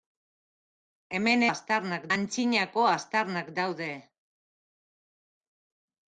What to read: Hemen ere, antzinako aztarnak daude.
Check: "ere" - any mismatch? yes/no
yes